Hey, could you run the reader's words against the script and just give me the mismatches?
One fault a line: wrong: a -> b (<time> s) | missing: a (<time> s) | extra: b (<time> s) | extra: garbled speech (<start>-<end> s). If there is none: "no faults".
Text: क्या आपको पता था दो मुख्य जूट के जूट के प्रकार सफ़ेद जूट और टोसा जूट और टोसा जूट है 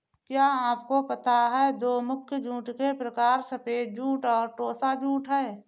wrong: था -> है (1.5 s)
missing: जूट के (2.9 s)
missing: और टोसा जूट (5.3 s)